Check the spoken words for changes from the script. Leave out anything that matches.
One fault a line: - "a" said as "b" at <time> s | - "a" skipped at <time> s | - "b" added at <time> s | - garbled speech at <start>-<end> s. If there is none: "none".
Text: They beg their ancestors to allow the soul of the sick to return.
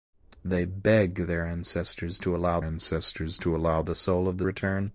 - "ancestors to allow" added at 2.6 s
- "sick to" skipped at 4.5 s